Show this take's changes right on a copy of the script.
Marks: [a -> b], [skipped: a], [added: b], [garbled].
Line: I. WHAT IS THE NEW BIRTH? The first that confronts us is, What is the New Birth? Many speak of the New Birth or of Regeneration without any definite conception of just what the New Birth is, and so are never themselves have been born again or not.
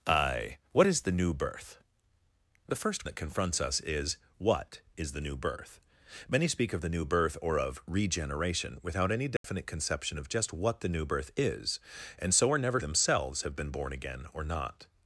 I. WHAT IS THE NEW BIRTH? The first that confronts us is, What is the New Birth? Many speak of the New Birth or of Regeneration without any definite conception of just what the New Birth is, and so are never themselves have been born again or not.